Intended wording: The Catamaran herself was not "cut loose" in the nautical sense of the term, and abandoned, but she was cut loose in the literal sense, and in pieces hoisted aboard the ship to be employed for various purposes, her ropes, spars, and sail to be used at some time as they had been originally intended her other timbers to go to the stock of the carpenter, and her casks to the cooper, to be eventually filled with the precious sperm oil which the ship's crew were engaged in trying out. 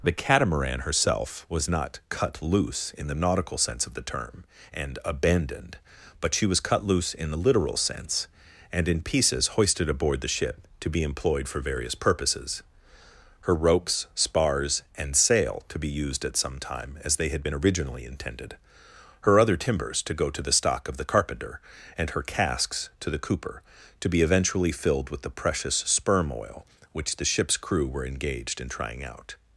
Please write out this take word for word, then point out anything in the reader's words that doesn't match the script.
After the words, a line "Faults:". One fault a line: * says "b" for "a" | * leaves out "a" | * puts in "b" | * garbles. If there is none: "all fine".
The Catamaran herself was not "cut loose" in the nautical sense of the term, and abandoned, but she was cut loose in the literal sense, and in pieces hoisted aboard the ship to be employed for various purposes, her ropes, spars, and sail to be used at some time as they had been originally intended her other timbers to go to the stock of the carpenter, and her casks to the cooper, to be eventually filled with the precious sperm oil which the ship's crew were engaged in trying out.
Faults:
all fine